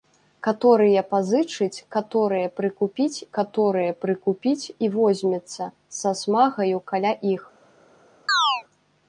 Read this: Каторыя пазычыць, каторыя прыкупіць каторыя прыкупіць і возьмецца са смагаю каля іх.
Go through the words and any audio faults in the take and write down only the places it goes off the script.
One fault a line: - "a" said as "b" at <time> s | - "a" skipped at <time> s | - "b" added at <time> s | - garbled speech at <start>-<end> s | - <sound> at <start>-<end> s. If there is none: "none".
- chirp at 8.3-8.6 s